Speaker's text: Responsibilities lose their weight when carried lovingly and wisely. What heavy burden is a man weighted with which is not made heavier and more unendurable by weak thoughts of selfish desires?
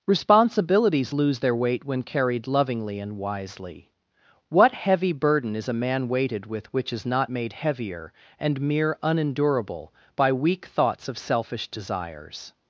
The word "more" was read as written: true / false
false